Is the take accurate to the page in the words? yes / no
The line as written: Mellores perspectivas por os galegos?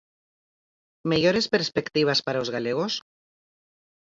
no